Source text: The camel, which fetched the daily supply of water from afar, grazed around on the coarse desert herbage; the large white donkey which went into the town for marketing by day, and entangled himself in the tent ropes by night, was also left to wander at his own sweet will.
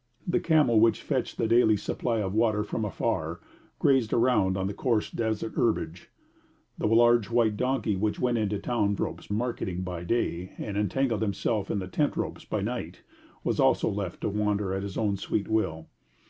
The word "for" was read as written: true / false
false